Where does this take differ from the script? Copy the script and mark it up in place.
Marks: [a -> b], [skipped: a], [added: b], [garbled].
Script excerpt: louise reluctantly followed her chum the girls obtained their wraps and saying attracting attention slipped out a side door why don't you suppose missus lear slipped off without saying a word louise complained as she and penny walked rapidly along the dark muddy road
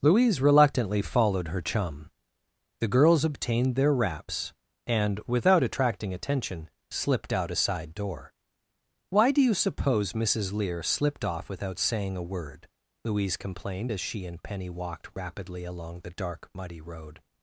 louise reluctantly followed her chum the girls obtained their wraps and [saying -> without] attracting attention slipped out a side door why [don't -> do] you suppose missus lear slipped off without saying a word louise complained as she and penny walked rapidly along the dark muddy road